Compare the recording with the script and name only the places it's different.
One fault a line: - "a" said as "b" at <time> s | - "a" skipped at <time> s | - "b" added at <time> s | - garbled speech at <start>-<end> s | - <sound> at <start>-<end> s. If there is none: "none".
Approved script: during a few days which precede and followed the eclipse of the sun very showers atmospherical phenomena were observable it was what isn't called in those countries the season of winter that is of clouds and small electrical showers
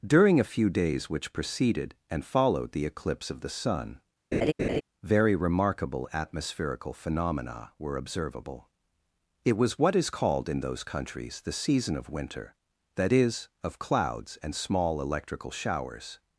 - "precede" said as "preceded" at 1.3 s
- laugh at 4.3-4.8 s
- "showers" said as "remarkable" at 5.4 s
- "isn't" said as "is" at 10.0 s